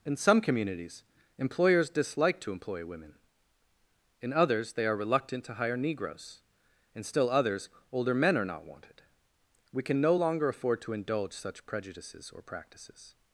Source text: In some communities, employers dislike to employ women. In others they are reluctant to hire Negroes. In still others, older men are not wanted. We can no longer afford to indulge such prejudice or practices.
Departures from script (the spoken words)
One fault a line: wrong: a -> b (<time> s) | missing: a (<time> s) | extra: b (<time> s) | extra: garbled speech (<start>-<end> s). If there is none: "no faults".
wrong: prejudice -> prejudices (11.7 s)